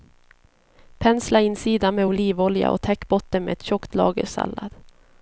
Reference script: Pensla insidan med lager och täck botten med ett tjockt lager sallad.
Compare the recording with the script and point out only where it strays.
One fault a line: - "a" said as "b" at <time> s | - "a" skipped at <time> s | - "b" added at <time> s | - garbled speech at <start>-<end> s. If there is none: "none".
- "lager" said as "olivolja" at 2.0 s